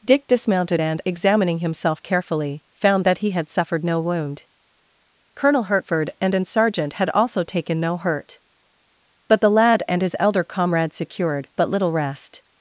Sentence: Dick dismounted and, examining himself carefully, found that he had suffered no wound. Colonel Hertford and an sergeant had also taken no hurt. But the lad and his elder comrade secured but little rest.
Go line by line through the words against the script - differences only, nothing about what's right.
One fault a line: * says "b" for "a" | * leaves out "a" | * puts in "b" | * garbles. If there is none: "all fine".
all fine